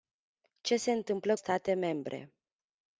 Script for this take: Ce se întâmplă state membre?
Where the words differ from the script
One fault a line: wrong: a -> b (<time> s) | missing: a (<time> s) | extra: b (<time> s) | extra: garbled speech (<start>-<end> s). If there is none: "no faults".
no faults